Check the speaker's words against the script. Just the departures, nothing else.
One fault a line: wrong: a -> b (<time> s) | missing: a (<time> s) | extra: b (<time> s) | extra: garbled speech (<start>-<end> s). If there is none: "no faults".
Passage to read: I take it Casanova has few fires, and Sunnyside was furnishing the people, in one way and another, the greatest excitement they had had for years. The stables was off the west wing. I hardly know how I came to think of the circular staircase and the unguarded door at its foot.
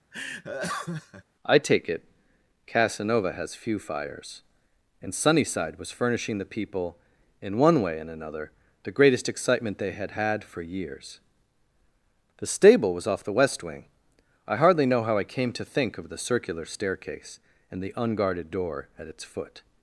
wrong: stables -> stable (12.5 s)